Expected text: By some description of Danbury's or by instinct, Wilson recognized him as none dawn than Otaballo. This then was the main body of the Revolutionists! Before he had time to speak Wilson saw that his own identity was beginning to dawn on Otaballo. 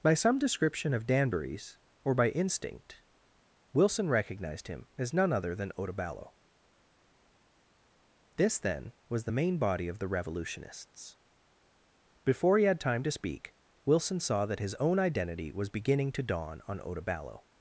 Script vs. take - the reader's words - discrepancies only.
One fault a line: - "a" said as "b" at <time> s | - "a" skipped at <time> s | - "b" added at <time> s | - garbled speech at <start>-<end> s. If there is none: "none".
- "dawn" said as "other" at 5.3 s